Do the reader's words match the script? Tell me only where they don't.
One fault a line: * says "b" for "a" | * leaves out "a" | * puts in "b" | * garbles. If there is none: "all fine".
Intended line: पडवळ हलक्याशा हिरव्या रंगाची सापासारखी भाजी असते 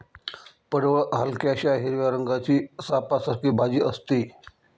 all fine